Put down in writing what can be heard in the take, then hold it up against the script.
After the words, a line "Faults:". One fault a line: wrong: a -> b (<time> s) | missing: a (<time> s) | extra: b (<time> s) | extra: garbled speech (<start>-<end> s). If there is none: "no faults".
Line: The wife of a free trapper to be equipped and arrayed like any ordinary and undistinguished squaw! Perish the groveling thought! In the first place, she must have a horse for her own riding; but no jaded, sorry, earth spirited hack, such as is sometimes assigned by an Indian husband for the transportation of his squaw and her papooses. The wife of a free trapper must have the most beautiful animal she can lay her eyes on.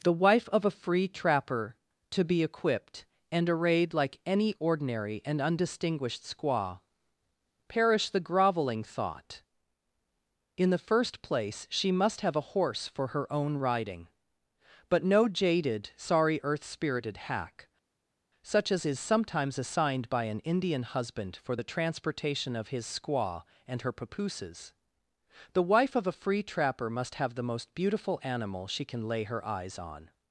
The wife of a free trapper to be equipped and arrayed like any ordinary and undistinguished squaw! Perish the groveling thought! In the first place, she must have a horse for her own riding; but no jaded, sorry, earth spirited hack, such as is sometimes assigned by an Indian husband for the transportation of his squaw and her papooses. The wife of a free trapper must have the most beautiful animal she can lay her eyes on.
Faults:
no faults